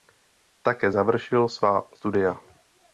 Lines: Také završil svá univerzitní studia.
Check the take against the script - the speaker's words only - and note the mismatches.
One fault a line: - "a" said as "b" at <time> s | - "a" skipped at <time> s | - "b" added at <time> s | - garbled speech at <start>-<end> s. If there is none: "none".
- "univerzitní" skipped at 2.0 s